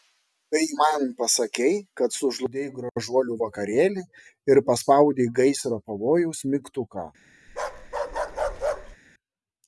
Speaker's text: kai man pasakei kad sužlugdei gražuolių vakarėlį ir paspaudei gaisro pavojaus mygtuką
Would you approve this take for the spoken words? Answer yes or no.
yes